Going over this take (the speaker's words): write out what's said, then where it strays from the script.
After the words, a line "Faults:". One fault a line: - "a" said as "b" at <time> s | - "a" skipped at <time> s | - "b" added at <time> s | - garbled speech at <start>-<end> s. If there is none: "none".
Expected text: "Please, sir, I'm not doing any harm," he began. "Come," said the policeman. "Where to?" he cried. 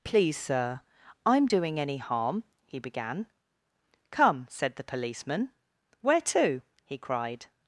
"Please, sir, I'm doing any harm," he began. "Come," said the policeman. "Where to?" he cried.
Faults:
- "not" skipped at 1.5 s